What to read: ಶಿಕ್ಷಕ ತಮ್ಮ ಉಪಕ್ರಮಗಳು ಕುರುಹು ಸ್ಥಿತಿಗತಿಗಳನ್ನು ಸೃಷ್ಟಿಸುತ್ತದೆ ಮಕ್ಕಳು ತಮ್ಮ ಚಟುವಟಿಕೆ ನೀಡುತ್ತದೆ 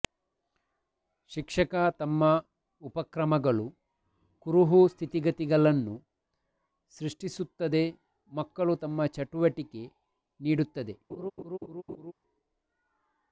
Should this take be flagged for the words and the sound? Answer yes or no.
yes